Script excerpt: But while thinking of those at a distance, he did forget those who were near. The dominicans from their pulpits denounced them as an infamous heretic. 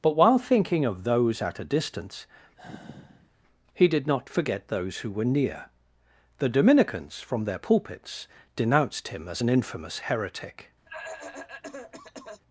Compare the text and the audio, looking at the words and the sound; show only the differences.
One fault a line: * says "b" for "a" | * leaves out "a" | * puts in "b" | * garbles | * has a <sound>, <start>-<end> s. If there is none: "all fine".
* has a sigh, 2.6-3.3 s
* puts in "not"
* says "him" for "them"
* has a cough, 10.9-12.4 s